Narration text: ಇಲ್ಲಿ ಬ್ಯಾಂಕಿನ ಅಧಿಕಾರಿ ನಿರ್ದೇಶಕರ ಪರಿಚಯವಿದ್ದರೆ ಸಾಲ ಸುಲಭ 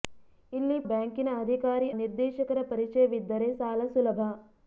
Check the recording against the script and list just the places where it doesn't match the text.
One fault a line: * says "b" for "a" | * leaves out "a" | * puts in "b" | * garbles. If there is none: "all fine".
all fine